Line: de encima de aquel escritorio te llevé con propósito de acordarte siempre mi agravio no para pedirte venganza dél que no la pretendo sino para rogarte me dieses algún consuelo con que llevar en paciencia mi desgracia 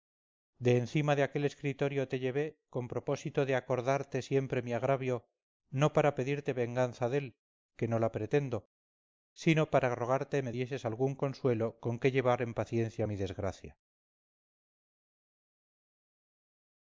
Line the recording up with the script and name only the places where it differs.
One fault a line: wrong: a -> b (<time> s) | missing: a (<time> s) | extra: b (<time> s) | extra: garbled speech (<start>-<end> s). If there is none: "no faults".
no faults